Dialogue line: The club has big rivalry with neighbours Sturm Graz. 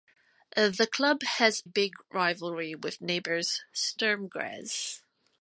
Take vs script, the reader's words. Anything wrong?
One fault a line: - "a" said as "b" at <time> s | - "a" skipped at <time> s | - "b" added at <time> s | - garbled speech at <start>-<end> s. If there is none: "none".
none